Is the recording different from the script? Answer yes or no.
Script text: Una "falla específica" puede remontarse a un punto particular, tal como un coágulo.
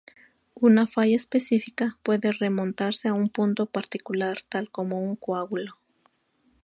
no